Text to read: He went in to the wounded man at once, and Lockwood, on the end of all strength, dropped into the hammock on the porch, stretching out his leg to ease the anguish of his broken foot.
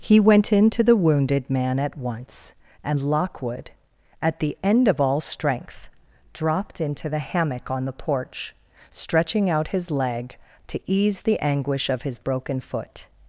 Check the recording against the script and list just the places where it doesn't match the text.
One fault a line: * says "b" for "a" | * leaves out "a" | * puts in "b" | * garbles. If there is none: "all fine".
* says "at" for "on"